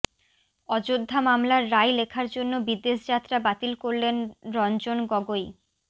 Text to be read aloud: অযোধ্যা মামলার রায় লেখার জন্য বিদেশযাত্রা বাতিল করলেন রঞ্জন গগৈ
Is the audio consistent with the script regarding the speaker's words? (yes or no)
yes